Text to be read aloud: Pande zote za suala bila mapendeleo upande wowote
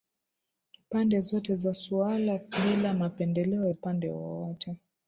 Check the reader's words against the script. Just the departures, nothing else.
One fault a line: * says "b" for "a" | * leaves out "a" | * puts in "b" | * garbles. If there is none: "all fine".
all fine